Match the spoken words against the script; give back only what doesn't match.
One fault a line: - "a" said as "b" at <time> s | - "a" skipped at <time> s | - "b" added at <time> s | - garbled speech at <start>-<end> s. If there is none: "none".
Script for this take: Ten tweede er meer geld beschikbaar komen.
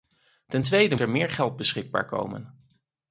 none